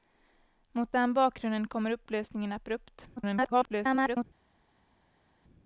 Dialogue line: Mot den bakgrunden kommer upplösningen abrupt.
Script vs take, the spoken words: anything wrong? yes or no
yes